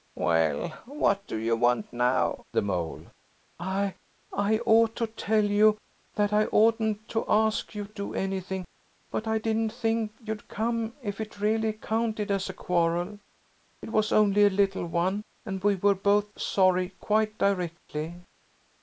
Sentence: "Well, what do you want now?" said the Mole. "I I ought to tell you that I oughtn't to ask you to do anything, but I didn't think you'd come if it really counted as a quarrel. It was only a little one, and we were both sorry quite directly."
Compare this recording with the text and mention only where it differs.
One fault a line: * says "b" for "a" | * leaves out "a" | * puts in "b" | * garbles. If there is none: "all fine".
* leaves out "said"
* leaves out "to"